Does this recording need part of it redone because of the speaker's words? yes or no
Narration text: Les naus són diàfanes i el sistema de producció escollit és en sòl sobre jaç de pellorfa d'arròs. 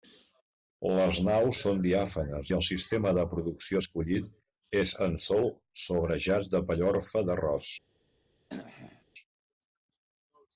no